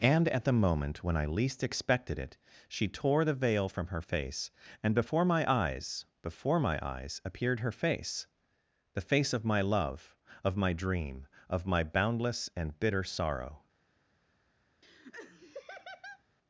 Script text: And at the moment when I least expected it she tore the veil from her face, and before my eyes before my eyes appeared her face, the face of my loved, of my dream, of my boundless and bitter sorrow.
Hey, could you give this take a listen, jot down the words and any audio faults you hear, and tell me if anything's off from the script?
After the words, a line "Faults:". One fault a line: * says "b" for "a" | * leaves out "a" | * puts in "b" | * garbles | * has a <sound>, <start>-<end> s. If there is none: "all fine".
And at the moment when I least expected it she tore the veil from her face, and before my eyes before my eyes appeared her face, the face of my love, of my dream, of my boundless and bitter sorrow.
Faults:
* says "love" for "loved"
* has a laugh, 14.8-16.2 s